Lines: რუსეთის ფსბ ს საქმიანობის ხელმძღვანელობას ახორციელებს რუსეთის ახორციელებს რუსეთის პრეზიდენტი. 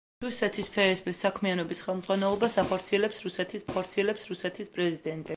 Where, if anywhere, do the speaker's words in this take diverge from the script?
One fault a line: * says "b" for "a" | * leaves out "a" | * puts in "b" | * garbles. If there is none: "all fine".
all fine